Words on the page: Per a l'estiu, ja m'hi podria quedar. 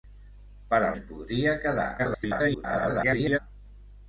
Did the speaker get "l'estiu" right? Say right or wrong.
wrong